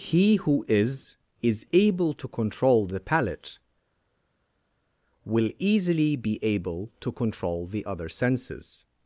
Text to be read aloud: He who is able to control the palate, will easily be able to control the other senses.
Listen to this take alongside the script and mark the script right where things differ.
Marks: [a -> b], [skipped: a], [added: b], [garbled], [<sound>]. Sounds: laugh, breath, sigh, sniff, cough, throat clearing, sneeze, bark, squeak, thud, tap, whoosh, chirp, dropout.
He who is [added: is] able to control the palate, will easily be able to control the other senses.